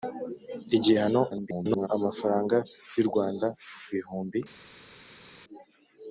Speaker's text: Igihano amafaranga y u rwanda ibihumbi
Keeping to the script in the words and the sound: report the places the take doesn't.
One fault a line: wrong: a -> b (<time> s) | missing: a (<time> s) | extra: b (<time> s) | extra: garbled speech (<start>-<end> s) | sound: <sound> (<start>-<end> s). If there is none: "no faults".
extra: garbled speech (1.3-1.9 s)